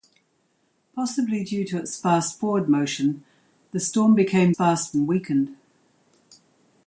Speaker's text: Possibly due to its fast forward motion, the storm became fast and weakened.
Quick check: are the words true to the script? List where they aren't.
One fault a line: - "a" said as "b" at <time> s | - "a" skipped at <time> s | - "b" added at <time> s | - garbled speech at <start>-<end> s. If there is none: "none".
none